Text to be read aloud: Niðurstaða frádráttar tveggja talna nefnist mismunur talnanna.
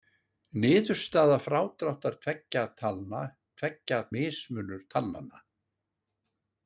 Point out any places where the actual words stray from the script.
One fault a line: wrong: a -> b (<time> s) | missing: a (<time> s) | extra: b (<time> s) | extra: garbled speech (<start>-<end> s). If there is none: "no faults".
wrong: nefnist -> tveggja (3.6 s)